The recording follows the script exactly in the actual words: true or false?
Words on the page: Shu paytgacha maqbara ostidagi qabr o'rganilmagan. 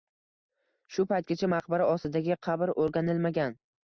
true